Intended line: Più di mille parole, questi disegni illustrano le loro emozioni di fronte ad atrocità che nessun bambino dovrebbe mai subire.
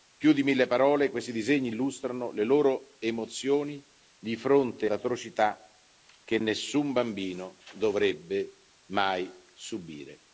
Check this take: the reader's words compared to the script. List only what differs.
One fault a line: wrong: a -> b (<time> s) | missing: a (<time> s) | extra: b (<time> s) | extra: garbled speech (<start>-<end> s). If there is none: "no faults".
missing: ad (4.9 s)